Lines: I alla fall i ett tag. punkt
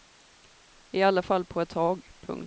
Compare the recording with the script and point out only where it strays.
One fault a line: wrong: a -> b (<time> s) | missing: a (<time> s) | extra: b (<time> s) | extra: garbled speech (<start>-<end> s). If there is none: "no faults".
wrong: i -> på (1.4 s)